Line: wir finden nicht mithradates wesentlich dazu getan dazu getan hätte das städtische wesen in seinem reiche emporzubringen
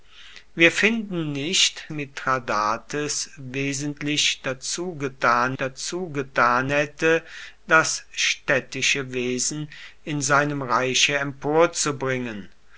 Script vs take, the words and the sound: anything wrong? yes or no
no